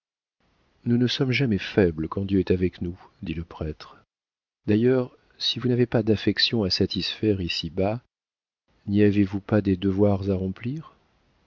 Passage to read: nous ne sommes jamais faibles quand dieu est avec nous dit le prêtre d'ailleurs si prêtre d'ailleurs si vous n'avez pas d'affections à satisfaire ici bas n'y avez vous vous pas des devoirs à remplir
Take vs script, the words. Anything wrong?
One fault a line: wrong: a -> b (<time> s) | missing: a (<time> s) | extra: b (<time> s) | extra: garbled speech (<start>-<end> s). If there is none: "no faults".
missing: prêtre d'ailleurs si (5.6 s)
missing: vous (9.4 s)